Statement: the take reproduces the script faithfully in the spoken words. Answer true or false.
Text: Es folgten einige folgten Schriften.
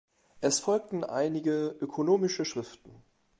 false